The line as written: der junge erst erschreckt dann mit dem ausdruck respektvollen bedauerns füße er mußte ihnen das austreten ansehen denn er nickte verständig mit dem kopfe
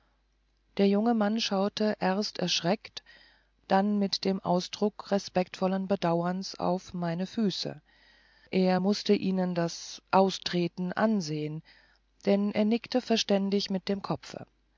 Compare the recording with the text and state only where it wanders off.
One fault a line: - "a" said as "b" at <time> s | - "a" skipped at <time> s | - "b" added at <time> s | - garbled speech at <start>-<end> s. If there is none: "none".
- "mann schaute" added at 1.1 s
- "auf meine" added at 6.5 s